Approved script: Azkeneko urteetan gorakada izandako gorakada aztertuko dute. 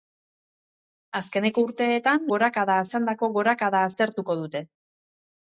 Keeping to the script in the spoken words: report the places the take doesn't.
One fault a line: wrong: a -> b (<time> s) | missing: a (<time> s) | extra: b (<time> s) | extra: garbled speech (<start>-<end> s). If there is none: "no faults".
no faults